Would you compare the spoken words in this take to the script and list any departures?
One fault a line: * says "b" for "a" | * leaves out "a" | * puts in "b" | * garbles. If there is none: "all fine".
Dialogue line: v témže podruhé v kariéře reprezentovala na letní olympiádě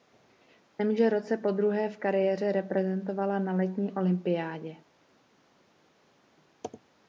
* puts in "roce"